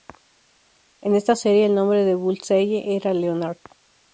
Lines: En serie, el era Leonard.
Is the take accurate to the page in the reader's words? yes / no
no